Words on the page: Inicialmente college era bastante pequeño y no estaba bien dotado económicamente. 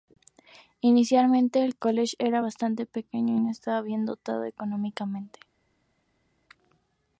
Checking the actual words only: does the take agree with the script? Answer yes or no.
no